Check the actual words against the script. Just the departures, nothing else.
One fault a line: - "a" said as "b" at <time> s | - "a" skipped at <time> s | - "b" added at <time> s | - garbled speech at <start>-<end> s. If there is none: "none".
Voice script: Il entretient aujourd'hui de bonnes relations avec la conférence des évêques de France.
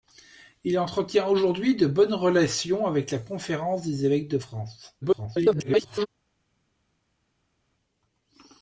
- garbled speech at 5.0-6.1 s